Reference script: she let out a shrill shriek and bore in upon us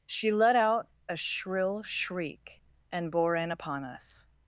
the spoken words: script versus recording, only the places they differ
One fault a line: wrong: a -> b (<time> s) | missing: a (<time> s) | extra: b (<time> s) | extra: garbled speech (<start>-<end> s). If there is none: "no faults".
no faults